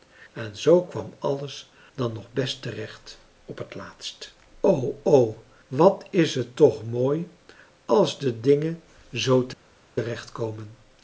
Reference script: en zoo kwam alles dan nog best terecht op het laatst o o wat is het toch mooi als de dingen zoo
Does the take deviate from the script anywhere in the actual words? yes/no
no